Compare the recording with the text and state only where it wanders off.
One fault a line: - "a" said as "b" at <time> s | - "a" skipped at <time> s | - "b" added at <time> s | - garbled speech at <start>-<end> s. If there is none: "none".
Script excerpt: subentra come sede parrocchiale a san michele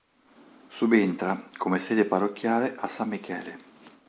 none